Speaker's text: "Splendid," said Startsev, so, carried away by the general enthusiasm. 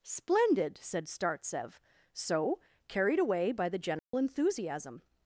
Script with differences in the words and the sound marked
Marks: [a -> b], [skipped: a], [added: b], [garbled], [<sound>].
"Splendid," said Startsev, so, carried away by the general [dropout] enthusiasm.